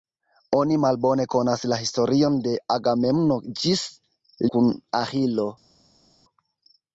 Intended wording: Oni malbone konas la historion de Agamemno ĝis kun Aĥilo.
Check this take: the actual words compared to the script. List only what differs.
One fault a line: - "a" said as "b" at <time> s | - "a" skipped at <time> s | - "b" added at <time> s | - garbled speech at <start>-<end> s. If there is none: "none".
none